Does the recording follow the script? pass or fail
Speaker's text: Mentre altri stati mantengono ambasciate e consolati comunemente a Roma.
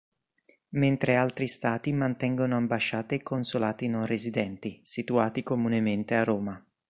fail